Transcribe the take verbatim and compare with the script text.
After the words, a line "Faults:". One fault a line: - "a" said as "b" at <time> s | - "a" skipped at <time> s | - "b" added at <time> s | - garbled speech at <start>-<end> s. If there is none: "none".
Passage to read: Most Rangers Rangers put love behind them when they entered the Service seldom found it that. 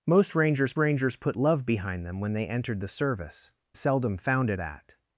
Most Rangers Rangers put love behind them when they entered the Service seldom found it that.
Faults:
none